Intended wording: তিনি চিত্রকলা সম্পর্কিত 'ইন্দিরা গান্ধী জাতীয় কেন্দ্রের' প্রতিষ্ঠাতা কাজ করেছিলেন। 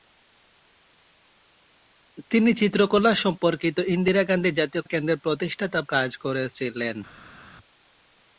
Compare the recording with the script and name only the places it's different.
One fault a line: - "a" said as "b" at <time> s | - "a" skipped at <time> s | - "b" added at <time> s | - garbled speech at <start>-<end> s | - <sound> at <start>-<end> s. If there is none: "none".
none